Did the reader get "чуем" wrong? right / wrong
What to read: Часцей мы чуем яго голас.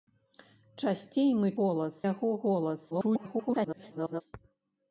wrong